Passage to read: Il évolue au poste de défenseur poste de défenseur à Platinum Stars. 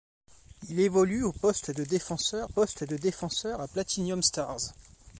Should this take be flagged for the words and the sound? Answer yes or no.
no